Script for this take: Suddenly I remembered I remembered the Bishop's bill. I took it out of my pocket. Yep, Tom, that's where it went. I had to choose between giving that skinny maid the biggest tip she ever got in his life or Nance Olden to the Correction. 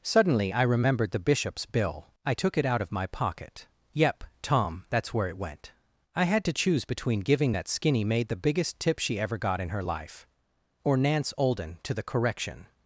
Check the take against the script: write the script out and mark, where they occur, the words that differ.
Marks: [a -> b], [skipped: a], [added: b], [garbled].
Suddenly I remembered [skipped: I remembered] the Bishop's bill. I took it out of my pocket. Yep, Tom, that's where it went. I had to choose between giving that skinny maid the biggest tip she ever got in [his -> her] life or Nance Olden to the Correction.